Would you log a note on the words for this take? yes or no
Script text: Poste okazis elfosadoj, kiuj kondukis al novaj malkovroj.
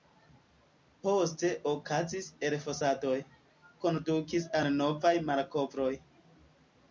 yes